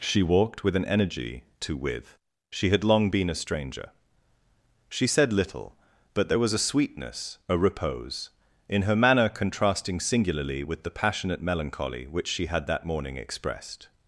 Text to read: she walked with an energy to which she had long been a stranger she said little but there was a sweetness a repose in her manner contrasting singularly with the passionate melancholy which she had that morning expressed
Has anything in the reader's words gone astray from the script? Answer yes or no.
yes